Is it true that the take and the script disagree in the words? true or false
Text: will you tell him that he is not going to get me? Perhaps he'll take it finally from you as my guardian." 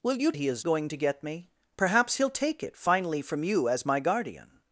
true